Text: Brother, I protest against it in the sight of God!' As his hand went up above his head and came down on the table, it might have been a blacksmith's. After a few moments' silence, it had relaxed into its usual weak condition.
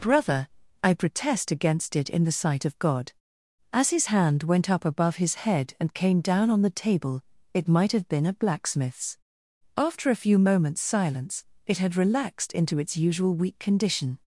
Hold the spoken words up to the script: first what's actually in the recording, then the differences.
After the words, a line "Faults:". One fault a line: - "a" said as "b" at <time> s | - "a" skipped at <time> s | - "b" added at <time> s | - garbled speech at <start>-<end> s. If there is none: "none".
Brother, I protest against it in the sight of God!' As his hand went up above his head and came down on the table, it might have been a blacksmith's. After a few moments' silence, it had relaxed into its usual weak condition.
Faults:
none